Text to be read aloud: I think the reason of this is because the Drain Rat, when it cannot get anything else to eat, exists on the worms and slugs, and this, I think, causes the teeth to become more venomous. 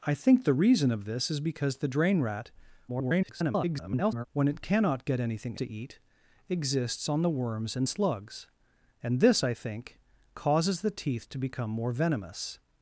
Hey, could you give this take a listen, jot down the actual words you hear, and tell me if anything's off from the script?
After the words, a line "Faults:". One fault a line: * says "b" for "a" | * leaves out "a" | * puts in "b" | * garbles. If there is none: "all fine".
I think the reason of this is because the Drain Rat, [garbled] when it cannot get anything to eat, exists on the worms and slugs, and this, I think, causes the teeth to become more venomous.
Faults:
* garbles
* leaves out "else"